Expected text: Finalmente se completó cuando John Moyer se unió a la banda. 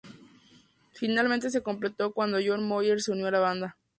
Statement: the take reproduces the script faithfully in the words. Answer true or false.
true